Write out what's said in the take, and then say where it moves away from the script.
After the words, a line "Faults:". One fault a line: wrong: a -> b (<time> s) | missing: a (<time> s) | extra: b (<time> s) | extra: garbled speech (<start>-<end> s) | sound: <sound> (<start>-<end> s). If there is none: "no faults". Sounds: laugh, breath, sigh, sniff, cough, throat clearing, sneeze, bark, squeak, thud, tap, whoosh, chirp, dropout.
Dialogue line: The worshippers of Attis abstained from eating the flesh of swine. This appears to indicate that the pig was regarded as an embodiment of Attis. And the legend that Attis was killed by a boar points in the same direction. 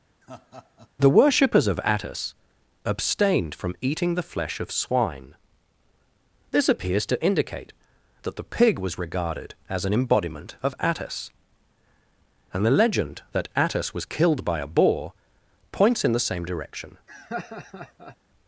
The worshippers of Attis abstained from eating the flesh of swine. This appears to indicate that the pig was regarded as an embodiment of Attis. And the legend that Attis was killed by a boar points in the same direction.
Faults:
sound: laugh (0.2-0.9 s)
sound: laugh (17.1-18.2 s)